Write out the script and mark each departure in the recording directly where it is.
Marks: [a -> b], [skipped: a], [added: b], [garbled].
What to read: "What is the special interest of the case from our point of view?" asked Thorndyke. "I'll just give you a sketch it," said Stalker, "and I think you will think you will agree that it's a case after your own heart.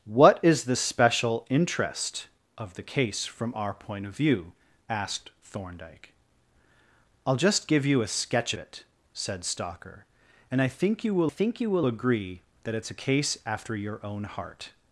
"What is the special interest of the case from our point of view?" asked Thorndyke. "I'll just give you a sketch it," said Stalker, "and I think you will think you will agree that it's a case after your own heart.